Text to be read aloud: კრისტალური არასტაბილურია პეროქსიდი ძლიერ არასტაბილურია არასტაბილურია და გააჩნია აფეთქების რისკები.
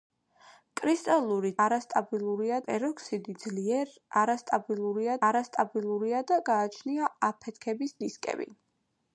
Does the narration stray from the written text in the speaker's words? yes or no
no